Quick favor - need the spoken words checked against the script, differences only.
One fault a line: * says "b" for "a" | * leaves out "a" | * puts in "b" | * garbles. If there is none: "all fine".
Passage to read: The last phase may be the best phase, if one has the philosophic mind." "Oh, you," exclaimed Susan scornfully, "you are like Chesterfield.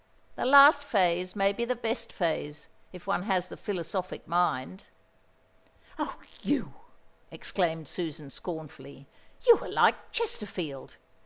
all fine